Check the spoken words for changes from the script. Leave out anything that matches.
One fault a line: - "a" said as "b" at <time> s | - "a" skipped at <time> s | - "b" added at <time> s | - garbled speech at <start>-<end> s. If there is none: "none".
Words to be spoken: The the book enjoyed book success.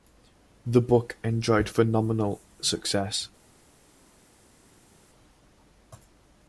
- "the" skipped at 0.8 s
- "book" said as "phenomenal" at 1.7 s